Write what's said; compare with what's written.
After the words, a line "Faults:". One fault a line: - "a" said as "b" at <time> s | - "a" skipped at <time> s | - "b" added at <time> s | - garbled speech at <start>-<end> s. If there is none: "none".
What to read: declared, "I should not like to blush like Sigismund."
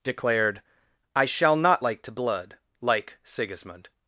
declared, "I shall not like to blood like Sigismund."
Faults:
- "should" said as "shall" at 1.2 s
- "blush" said as "blood" at 2.1 s